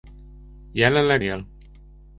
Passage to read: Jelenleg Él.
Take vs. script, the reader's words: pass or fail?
pass